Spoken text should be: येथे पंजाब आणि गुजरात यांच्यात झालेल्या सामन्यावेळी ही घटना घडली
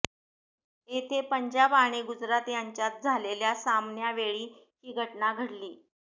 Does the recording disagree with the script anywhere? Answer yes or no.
no